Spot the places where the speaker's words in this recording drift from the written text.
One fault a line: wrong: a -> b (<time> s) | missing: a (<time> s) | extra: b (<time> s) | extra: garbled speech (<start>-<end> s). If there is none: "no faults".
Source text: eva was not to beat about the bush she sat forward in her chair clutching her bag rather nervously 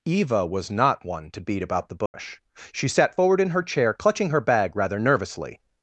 extra: one (1.1 s)